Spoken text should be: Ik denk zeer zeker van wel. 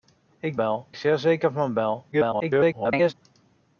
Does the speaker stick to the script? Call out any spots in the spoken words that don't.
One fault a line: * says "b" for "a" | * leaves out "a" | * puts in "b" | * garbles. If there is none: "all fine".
* says "wel" for "denk"
* garbles